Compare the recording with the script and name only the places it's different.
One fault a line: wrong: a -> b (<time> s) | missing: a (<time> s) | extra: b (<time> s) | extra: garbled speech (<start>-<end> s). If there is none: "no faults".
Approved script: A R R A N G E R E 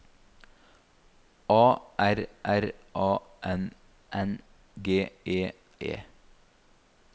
extra: N (4.1 s)
missing: R (5.5 s)